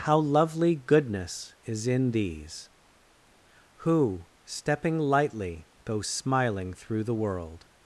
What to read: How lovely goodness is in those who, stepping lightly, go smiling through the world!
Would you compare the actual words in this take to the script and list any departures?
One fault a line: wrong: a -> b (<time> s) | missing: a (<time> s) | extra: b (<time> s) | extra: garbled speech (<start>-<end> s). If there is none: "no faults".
wrong: those -> these (2.1 s)